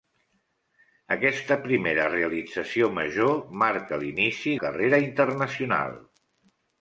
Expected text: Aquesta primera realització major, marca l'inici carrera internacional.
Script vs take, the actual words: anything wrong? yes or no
no